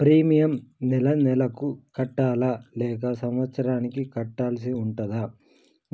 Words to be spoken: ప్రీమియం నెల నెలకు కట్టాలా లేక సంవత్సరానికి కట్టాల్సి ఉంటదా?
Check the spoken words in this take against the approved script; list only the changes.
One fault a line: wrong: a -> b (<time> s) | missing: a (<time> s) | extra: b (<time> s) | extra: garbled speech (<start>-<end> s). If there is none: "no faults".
no faults